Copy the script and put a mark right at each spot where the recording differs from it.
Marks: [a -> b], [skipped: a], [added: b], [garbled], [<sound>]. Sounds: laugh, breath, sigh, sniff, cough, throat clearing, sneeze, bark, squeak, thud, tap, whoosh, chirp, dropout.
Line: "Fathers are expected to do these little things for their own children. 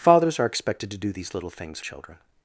"Fathers are expected to do these little things [skipped: for their own] children.